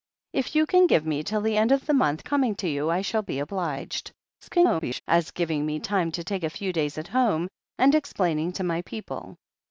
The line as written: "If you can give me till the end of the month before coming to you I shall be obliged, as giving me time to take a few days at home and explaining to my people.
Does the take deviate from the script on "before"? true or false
true